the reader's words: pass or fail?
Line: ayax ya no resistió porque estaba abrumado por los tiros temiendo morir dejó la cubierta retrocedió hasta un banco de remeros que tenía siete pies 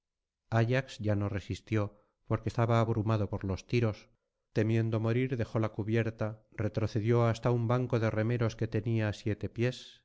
pass